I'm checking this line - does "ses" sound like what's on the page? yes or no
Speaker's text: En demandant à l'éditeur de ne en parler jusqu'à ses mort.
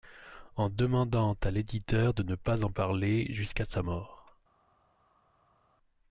no